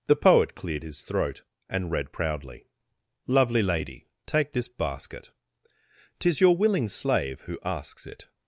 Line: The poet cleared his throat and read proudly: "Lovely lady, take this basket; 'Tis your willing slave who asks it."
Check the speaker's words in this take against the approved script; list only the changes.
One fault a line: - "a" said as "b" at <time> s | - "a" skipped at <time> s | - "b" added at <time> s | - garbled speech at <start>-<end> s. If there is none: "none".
none